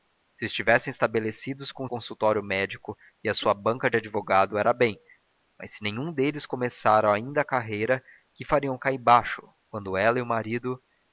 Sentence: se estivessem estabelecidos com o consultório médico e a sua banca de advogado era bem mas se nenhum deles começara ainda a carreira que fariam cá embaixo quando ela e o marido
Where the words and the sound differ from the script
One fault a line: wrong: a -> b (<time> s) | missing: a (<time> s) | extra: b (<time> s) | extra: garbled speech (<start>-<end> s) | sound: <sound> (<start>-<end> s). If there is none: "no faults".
no faults